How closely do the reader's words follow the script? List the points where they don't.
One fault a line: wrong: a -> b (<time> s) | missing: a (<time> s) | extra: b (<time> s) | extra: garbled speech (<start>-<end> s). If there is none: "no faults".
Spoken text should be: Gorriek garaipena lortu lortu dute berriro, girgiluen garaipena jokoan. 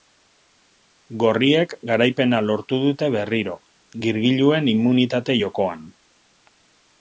missing: lortu (2.8 s)
wrong: garaipena -> immunitate (4.8 s)